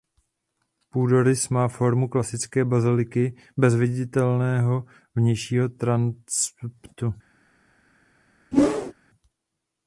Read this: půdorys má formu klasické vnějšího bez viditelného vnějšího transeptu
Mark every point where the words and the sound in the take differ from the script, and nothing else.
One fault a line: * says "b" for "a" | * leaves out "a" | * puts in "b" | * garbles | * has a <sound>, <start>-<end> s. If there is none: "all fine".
* says "baziliky" for "vnějšího"
* has a whoosh, 8.5-8.9 s